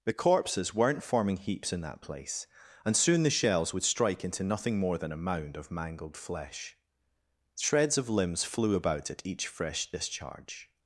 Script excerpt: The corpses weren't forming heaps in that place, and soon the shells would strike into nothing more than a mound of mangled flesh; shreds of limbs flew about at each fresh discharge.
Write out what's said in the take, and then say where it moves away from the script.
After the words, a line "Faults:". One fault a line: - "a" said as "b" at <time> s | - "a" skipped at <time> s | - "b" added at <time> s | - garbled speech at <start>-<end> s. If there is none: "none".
The corpses weren't forming heaps in that place, and soon the shells would strike into nothing more than a mound of mangled flesh; shreds of limbs flew about at each fresh discharge.
Faults:
none